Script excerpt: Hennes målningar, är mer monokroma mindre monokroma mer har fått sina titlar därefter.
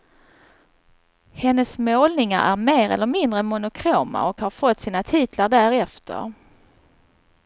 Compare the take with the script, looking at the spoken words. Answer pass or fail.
fail